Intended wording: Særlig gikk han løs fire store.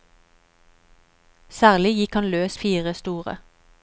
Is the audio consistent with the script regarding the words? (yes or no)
yes